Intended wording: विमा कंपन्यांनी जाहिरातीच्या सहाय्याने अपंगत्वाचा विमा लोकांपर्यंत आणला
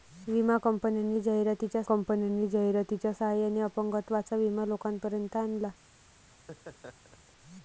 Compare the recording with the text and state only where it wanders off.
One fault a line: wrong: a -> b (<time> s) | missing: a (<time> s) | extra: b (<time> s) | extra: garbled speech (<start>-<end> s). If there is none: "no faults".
extra: कंपन्यांनी जाहिरातीच्या (1.8 s)